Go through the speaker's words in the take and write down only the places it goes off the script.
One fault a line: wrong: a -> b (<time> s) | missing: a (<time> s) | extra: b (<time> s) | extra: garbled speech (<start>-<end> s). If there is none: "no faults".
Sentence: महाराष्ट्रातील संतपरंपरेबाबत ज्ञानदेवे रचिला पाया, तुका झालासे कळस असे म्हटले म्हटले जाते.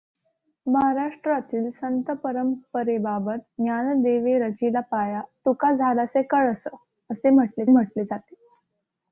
no faults